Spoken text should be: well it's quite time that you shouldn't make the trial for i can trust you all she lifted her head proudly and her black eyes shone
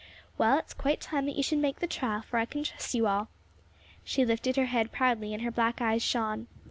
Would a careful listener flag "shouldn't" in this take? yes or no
yes